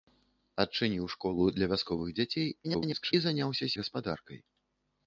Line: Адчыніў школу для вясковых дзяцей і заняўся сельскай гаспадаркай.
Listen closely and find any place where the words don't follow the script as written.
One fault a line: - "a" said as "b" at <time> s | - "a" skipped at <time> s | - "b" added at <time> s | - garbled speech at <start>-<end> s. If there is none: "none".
- garbled speech at 2.6-3.1 s
- "сельскай" skipped at 3.7 s